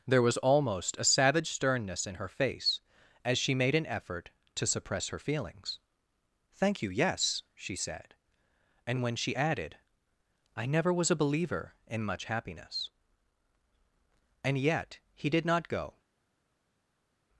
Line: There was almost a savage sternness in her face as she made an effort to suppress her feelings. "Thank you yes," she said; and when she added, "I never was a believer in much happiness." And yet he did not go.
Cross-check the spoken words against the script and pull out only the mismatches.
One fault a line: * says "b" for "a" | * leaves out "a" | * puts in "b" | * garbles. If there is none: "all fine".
all fine